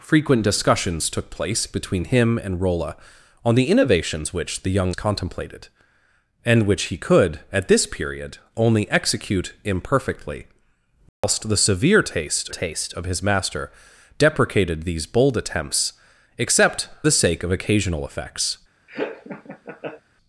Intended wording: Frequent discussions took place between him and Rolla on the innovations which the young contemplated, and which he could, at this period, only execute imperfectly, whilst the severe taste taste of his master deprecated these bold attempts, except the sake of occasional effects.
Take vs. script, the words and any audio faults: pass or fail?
fail